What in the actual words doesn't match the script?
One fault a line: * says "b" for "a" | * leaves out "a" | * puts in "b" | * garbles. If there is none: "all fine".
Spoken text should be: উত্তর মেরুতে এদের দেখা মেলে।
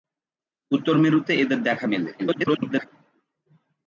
* garbles